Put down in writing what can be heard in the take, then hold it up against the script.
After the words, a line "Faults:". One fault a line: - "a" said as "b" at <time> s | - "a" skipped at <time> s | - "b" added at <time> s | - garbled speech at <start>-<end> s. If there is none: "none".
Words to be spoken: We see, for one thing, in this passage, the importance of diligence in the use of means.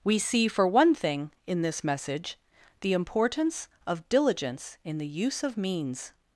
We see, for one thing, in this message, the importance of diligence in the use of means.
Faults:
- "passage" said as "message" at 1.8 s